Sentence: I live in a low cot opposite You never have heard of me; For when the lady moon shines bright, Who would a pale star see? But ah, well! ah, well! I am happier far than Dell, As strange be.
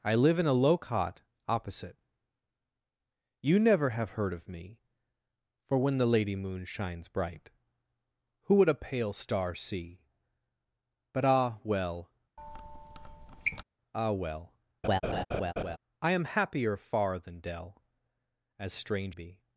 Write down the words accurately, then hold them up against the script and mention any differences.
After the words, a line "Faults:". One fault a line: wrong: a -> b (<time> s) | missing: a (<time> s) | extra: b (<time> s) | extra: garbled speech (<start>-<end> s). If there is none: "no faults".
I live in a low cot opposite You never have heard of me; For when the lady moon shines bright, Who would a pale star see? But ah, well! ah, well! I am happier far than Dell, As strange be.
Faults:
no faults